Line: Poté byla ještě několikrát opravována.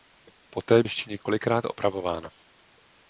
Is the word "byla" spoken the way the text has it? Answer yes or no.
no